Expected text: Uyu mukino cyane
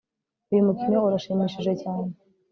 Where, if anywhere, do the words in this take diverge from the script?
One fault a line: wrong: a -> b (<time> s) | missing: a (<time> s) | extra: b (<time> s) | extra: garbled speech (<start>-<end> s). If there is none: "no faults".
extra: urashimishije (1.1 s)